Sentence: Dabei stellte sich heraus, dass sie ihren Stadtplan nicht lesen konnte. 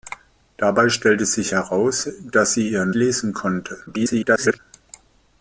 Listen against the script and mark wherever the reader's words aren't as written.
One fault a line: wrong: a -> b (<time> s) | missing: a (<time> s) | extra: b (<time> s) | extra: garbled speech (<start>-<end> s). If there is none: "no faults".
missing: Stadtplan nicht (2.9 s)
extra: garbled speech (3.9-4.6 s)